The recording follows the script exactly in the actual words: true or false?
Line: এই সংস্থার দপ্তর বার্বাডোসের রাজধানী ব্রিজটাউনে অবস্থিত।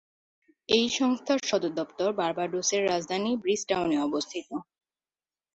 false